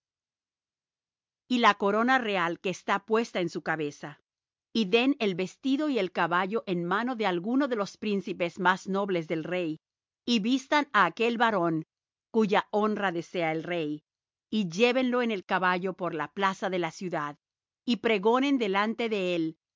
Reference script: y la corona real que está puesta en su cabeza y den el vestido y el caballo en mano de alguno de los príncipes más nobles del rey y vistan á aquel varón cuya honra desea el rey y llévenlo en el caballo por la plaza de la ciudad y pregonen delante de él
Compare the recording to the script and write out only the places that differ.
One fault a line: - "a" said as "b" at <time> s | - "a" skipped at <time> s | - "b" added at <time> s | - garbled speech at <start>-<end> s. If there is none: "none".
none